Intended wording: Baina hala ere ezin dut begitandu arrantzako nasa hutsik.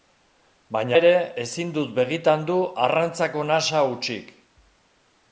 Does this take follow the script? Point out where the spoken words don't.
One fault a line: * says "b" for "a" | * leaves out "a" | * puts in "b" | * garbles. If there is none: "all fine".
* leaves out "hala"